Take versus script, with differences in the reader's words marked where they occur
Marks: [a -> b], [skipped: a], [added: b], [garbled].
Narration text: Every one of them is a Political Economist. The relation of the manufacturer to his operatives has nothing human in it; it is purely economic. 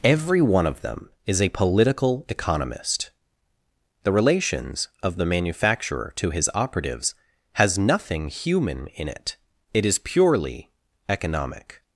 Every one of them is a Political Economist. The [relation -> relations] of the manufacturer to his operatives has nothing human in it; it is purely economic.